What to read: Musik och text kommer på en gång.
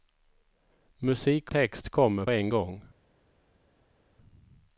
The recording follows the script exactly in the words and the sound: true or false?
false